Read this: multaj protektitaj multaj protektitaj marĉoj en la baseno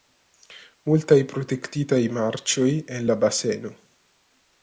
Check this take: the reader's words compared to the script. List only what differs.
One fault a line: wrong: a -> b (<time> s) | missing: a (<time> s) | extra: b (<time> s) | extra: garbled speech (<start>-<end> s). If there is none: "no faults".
missing: multaj protektitaj (2.0 s)